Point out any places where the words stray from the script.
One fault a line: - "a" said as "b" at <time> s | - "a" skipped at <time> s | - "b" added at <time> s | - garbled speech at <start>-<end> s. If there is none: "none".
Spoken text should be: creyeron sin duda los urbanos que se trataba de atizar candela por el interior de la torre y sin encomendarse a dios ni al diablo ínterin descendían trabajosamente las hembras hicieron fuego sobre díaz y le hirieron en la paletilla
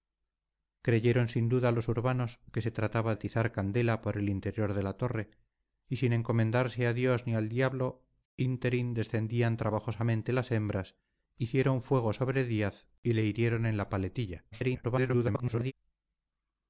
- "de" skipped at 3.1 s
- garbled speech at 14.5-15.7 s